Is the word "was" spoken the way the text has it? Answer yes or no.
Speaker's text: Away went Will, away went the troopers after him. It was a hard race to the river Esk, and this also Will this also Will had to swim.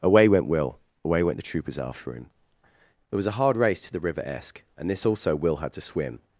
yes